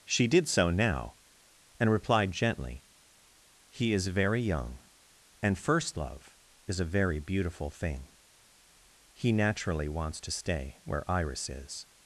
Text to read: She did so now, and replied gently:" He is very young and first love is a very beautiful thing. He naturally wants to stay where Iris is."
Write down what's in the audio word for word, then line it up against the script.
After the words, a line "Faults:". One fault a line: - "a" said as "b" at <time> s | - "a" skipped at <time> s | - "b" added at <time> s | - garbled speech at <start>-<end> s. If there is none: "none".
She did so now, and replied gently:" He is very young and first love is a very beautiful thing. He naturally wants to stay where Iris is."
Faults:
none